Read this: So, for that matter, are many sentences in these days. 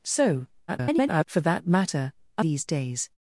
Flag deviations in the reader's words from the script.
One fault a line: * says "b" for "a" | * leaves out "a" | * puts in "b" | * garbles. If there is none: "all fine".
* garbles
* leaves out "many sentences in"